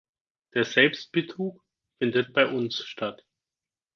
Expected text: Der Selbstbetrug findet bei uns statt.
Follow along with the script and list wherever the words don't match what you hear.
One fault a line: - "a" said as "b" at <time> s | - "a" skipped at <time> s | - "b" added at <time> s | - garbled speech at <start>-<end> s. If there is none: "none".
none